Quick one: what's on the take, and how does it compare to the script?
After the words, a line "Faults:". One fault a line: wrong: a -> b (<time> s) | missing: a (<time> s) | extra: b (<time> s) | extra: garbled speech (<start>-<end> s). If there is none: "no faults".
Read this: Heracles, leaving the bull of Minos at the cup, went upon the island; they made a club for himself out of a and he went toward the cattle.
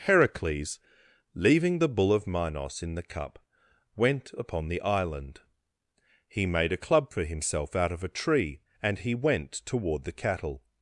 Heracles, leaving the bull of Minos in the cup, went upon the island; he made a club for himself out of a tree and he went toward the cattle.
Faults:
wrong: at -> in (2.8 s)
wrong: they -> he (6.3 s)
extra: tree (8.1 s)